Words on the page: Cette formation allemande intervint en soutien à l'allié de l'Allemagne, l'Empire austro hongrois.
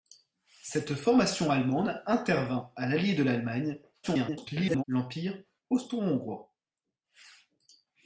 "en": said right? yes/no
no